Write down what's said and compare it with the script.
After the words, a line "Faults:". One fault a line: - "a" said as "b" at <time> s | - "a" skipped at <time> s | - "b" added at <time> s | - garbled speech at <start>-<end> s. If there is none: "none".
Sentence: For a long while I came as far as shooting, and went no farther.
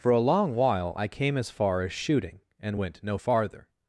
For a long while I came as far as shooting, and went no farther.
Faults:
none